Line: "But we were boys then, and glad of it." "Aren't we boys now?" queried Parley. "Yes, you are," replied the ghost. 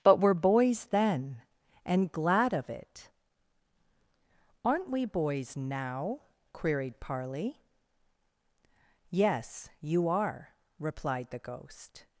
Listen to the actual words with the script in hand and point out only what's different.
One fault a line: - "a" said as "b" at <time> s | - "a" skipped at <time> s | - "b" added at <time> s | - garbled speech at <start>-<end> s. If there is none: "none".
- "we" skipped at 0.2 s